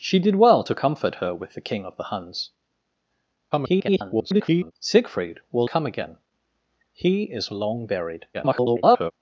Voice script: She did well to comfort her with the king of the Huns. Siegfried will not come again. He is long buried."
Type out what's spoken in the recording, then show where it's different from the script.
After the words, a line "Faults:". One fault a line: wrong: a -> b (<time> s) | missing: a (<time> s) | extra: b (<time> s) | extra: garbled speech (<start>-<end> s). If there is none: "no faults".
She did well to comfort her with the king of the Huns. [garbled] Siegfried will come again. He is long buried." [garbled]
Faults:
extra: garbled speech (3.5-4.7 s)
missing: not (5.7 s)
extra: garbled speech (8.3-9.1 s)